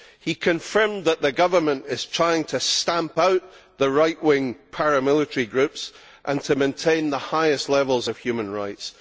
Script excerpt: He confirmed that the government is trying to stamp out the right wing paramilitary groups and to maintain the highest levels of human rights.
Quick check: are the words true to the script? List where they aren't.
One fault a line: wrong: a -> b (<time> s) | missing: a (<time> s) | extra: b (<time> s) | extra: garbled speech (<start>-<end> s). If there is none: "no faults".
no faults